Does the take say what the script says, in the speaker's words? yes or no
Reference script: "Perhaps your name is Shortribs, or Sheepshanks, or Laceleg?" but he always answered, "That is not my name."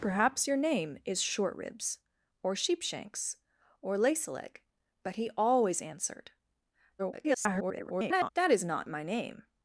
no